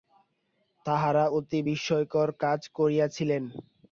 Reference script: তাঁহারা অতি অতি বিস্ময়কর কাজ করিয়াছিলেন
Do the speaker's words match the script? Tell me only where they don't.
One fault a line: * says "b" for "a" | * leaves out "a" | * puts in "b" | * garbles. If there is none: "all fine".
* leaves out "অতি"